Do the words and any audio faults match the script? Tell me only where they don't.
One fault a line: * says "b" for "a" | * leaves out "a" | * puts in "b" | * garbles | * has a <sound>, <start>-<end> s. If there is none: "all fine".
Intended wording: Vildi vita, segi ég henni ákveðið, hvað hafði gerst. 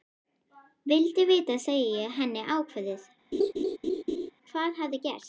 * has a laugh, 3.3-4.3 s